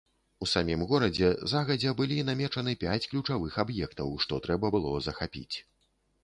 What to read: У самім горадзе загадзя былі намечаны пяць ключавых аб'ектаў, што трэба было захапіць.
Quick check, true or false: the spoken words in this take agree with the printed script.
true